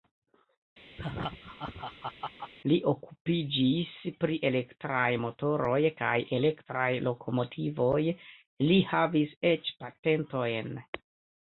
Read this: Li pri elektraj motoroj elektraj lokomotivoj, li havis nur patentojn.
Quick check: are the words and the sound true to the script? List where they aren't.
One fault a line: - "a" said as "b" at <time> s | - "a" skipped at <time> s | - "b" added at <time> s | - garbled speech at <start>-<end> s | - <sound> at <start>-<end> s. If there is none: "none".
- laugh at 1.0-2.5 s
- "okupiĝis" added at 2.9 s
- "kaj" added at 6.0 s
- "nur" said as "eĉ" at 9.5 s